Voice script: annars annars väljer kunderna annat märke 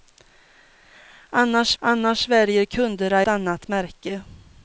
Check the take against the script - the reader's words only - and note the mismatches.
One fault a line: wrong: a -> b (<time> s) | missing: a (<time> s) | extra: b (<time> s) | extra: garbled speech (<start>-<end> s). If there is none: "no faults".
no faults